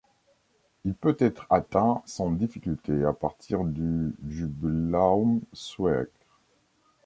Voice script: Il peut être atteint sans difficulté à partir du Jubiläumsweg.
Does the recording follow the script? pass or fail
pass